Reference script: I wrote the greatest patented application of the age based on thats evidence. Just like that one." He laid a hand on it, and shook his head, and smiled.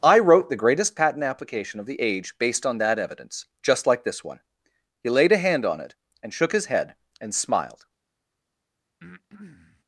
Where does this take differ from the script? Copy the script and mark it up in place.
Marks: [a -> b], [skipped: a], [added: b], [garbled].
I wrote the greatest [patented -> patent] application of the age based on [thats -> that] evidence. Just like [that -> this] one." He laid a hand on it, and shook his head, and smiled.